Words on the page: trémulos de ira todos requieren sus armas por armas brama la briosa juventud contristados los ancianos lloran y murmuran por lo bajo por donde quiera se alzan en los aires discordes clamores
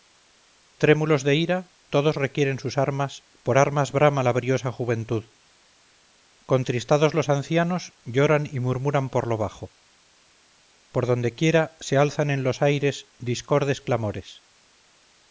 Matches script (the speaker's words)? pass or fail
pass